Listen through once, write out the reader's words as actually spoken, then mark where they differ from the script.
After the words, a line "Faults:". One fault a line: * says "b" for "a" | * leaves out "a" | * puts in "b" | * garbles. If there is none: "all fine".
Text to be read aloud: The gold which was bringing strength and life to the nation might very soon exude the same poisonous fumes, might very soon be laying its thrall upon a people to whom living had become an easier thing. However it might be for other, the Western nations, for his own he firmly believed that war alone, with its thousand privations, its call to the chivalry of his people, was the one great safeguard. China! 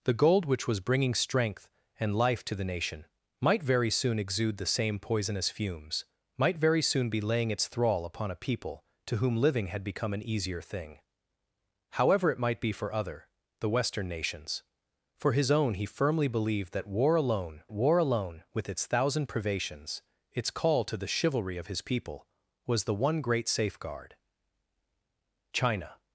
The gold which was bringing strength and life to the nation might very soon exude the same poisonous fumes, might very soon be laying its thrall upon a people to whom living had become an easier thing. However it might be for other, the Western nations, for his own he firmly believed that war alone war alone, with its thousand privations, its call to the chivalry of his people, was the one great safeguard. China!
Faults:
* puts in "war alone"